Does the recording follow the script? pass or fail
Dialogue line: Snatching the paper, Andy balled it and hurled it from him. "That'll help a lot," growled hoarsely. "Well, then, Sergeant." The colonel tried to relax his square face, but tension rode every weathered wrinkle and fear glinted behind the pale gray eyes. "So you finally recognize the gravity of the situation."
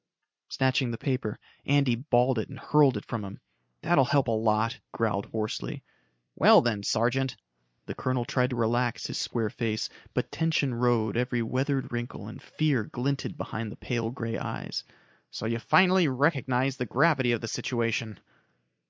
pass